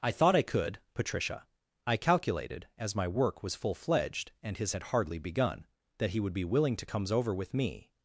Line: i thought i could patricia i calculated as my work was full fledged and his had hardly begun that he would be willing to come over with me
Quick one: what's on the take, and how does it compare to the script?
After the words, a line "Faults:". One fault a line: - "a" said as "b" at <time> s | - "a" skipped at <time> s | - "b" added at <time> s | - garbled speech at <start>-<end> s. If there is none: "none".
i thought i could patricia i calculated as my work was full fledged and his had hardly begun that he would be willing to comes over with me
Faults:
- "come" said as "comes" at 6.8 s